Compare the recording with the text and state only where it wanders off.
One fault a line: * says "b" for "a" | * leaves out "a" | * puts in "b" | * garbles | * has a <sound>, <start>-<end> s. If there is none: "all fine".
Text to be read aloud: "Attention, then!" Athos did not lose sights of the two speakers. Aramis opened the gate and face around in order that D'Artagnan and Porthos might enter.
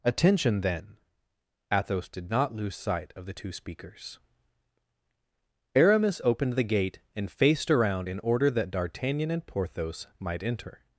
* says "sight" for "sights"
* says "faced" for "face"